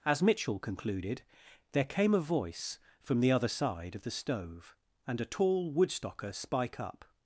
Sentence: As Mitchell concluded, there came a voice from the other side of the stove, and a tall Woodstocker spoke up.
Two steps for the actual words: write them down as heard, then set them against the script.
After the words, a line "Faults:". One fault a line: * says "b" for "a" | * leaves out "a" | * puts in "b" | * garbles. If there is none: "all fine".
As Mitchell concluded, there came a voice from the other side of the stove, and a tall Woodstocker spike up.
Faults:
* says "spike" for "spoke"